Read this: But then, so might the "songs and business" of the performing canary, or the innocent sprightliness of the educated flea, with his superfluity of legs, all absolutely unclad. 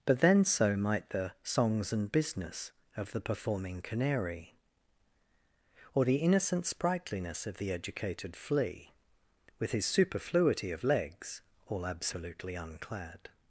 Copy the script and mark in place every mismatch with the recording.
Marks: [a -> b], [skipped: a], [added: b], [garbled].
But then, so might the "songs and business" of the performing canary, or the innocent sprightliness of the educated flea, with his superfluity of legs, all absolutely unclad.